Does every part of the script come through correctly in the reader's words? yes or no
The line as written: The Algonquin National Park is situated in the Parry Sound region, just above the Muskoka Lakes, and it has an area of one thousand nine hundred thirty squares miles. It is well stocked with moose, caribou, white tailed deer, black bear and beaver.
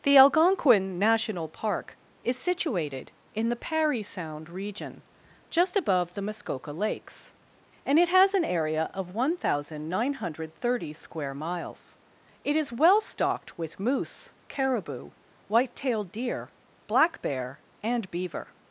no